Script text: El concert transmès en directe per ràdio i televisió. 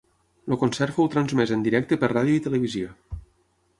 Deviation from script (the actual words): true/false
true